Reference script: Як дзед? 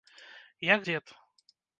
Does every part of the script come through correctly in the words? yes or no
yes